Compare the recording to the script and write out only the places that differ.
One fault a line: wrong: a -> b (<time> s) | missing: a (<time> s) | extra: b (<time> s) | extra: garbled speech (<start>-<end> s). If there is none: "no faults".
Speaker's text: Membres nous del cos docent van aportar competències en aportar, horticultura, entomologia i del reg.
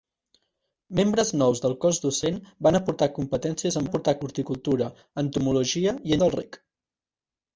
no faults